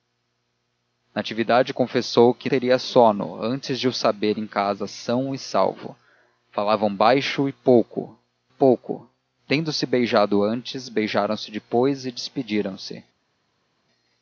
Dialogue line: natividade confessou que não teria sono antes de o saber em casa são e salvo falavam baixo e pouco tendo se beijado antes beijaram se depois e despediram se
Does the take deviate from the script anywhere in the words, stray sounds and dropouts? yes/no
yes